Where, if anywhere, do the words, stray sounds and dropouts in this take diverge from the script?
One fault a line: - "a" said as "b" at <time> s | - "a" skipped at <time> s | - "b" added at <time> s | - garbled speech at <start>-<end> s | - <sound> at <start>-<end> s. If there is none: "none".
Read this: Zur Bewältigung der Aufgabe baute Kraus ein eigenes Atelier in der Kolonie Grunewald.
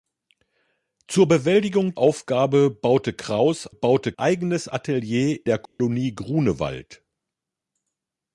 - "der" skipped at 1.9 s
- "ein" said as "baute" at 3.7 s
- "in" skipped at 5.4 s
- dropout at 5.7-5.8 s